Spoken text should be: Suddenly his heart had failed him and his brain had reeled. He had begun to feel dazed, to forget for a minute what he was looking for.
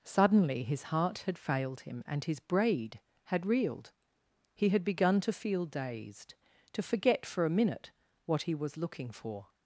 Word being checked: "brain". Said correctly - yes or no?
no